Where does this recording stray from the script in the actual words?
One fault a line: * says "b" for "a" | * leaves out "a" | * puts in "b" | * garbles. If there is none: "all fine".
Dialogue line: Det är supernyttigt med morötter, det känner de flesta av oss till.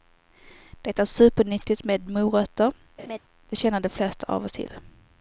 all fine